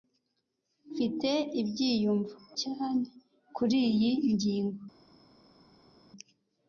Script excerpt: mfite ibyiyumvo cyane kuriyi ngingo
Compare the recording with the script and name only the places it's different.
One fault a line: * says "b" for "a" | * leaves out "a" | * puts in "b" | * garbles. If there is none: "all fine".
all fine